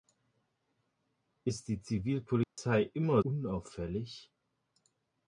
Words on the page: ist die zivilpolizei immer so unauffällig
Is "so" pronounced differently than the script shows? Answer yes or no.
yes